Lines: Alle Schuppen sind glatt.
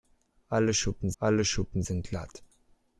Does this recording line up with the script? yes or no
no